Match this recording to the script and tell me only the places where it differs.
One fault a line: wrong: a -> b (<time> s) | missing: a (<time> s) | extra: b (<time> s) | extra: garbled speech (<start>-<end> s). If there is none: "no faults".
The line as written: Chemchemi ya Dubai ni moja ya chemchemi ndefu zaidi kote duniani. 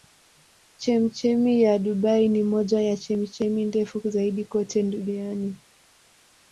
no faults